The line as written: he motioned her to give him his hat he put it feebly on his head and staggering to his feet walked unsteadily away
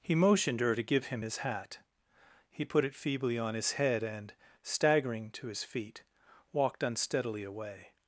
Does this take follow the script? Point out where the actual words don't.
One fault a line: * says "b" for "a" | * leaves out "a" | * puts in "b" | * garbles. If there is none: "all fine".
all fine